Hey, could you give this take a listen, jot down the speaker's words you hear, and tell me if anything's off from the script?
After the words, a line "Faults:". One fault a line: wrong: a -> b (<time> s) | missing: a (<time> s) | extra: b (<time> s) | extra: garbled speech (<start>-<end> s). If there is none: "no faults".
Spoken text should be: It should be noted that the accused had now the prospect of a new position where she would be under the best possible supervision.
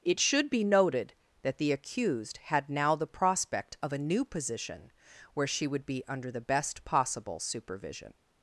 It should be noted that the accused had now the prospect of a new position where she would be under the best possible supervision.
Faults:
no faults